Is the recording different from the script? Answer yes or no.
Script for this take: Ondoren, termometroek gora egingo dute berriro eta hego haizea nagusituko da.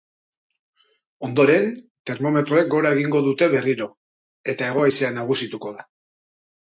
no